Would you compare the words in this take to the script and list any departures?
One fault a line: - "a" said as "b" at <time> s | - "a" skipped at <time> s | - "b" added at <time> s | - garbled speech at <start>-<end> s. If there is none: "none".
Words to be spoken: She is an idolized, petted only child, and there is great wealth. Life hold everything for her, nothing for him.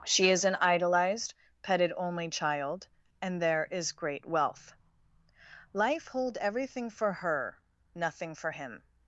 none